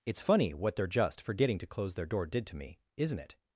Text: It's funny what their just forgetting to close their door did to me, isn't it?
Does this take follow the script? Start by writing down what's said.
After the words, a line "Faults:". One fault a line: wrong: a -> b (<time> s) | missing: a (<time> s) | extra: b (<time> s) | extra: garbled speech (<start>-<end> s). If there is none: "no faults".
It's funny what their just forgetting to close their door did to me, isn't it?
Faults:
no faults